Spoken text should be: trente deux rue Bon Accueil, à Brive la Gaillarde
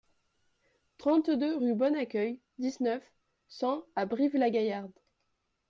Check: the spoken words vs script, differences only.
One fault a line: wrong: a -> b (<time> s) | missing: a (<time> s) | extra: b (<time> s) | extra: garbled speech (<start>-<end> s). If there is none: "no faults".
extra: dix neuf cent (2.6 s)